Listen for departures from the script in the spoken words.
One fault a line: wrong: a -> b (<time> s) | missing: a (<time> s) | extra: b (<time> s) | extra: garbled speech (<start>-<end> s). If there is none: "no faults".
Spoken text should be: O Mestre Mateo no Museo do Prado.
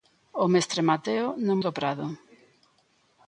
missing: Museo (1.6 s)